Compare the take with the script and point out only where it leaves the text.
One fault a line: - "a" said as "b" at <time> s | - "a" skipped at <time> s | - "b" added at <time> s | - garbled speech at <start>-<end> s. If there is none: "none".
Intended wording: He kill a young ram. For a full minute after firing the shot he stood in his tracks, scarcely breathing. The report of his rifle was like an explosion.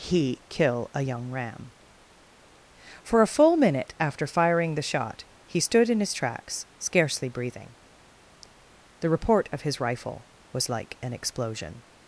none